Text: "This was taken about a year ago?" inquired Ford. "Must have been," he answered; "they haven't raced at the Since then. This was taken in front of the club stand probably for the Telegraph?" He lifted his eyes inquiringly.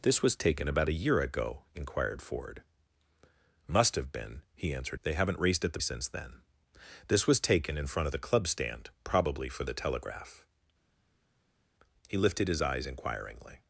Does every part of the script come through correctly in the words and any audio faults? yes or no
yes